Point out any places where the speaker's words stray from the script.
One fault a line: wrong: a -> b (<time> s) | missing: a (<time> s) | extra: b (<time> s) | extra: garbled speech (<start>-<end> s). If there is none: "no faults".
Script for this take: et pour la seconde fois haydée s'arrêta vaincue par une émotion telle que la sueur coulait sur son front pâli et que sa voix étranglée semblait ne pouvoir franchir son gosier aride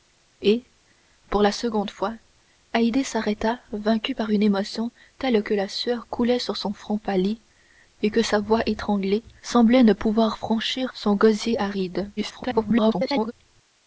extra: garbled speech (12.2-13.3 s)